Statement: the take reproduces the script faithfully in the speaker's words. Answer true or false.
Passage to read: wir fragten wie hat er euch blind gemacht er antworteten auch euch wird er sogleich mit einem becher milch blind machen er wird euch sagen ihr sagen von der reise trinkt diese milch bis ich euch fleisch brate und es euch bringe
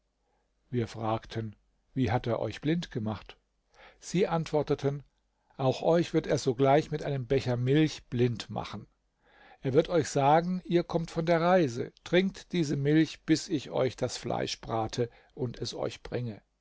false